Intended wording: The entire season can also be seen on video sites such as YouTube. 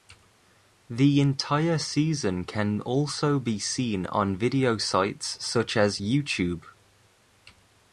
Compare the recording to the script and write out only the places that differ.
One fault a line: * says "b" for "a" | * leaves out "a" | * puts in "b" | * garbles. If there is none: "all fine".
all fine